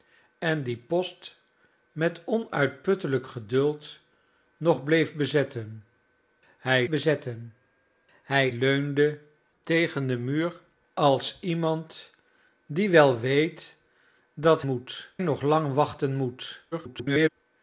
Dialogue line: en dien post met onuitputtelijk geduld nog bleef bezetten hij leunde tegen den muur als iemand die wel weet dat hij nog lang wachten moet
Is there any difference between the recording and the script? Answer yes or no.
yes